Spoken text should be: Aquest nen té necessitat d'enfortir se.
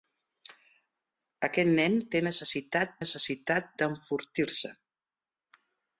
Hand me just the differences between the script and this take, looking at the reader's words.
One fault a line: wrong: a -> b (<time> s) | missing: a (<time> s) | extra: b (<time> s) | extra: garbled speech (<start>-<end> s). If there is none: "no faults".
extra: necessitat (3.0 s)